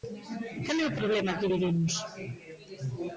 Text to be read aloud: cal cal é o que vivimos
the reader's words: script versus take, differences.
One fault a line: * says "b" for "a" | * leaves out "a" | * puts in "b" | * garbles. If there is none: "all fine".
* leaves out "cal"
* puts in "problema"